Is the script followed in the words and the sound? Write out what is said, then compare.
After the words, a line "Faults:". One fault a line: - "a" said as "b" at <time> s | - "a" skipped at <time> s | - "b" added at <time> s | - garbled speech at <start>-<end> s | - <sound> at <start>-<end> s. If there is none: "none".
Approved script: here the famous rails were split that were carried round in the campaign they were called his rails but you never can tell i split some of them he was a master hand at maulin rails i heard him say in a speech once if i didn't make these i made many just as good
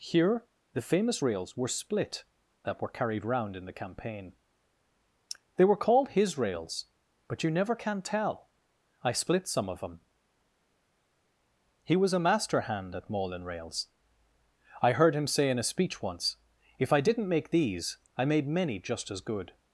here the famous rails were split that were carried round in the campaign they were called his rails but you never can tell i split some of them he was a master hand at maulin rails i heard him say in a speech once if i didn't make these i made many just as good
Faults:
none